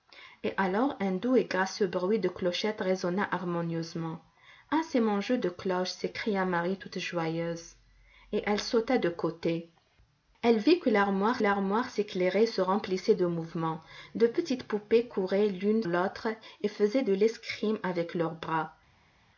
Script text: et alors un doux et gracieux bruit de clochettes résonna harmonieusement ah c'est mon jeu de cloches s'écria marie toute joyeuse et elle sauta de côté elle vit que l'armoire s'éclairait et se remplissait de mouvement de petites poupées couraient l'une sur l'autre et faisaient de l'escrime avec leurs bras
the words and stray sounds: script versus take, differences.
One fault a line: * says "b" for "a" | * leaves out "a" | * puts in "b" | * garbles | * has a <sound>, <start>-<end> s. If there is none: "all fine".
* puts in "l'armoire"
* leaves out "sur"